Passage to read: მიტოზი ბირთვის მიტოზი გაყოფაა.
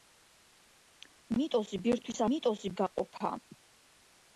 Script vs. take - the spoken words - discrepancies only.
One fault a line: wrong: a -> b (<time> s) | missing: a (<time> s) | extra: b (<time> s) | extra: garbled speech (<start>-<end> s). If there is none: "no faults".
no faults